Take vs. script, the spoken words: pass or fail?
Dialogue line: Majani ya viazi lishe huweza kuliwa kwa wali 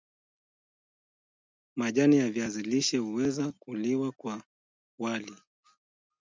pass